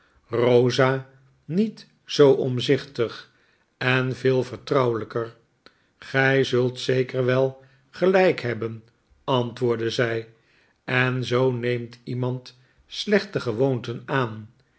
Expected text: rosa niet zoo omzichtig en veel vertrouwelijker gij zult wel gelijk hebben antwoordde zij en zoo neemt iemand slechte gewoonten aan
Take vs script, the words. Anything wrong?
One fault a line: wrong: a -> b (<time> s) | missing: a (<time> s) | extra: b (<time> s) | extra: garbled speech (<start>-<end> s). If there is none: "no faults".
extra: zeker (6.8 s)